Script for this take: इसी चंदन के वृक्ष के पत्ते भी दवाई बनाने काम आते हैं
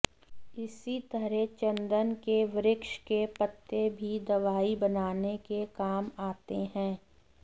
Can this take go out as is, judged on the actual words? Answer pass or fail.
fail